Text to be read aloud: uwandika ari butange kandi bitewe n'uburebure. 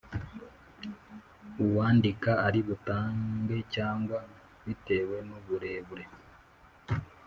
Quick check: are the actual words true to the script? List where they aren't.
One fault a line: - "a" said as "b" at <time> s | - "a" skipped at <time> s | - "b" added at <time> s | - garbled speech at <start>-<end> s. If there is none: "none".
- "kandi" said as "cyangwa" at 3.7 s